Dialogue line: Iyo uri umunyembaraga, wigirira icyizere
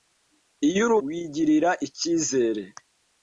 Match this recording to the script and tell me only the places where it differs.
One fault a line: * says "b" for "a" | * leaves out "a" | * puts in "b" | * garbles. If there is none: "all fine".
* leaves out "umunyembaraga"